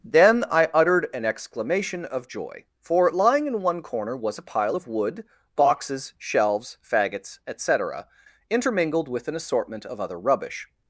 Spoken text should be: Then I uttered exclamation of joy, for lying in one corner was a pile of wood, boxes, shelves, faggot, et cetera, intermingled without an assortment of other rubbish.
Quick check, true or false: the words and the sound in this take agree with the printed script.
false